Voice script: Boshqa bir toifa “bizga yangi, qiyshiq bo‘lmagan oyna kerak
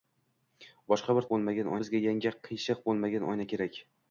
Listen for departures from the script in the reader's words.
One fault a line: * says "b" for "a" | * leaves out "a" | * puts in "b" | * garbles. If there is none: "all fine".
* says "bo‘lmagan" for "toifa"